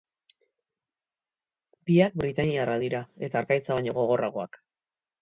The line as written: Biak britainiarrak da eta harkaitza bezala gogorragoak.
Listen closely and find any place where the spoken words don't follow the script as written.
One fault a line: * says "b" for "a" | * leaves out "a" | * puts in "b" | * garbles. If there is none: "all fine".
* says "dira" for "da"
* says "baino" for "bezala"